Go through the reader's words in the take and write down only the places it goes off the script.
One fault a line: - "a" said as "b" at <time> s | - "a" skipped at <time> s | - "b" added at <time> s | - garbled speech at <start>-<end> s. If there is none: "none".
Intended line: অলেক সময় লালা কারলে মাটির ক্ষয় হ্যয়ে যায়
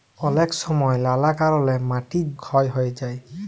none